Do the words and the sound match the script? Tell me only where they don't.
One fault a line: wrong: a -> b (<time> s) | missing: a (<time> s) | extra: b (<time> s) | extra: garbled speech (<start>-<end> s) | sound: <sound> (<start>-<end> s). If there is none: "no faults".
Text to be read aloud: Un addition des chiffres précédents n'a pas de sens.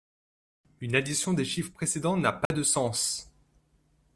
wrong: Un -> Une (0.8 s)
sound: dropout (2.5-2.5 s)